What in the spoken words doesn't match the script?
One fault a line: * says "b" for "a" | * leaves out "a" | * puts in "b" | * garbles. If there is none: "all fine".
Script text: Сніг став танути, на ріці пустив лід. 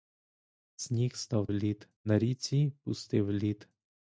* says "лід" for "танути"